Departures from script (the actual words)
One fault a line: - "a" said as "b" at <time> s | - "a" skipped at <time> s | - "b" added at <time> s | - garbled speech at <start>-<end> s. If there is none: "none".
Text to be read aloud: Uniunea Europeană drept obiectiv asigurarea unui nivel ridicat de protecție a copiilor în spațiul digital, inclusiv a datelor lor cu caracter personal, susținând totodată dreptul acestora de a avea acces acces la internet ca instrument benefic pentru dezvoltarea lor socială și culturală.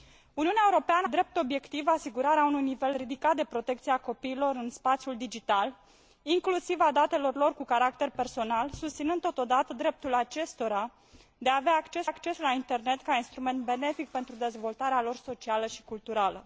none